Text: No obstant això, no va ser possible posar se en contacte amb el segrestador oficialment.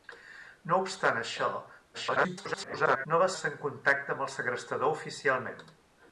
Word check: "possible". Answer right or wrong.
wrong